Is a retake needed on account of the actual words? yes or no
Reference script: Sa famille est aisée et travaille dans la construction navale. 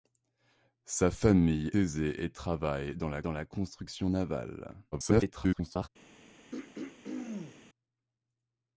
yes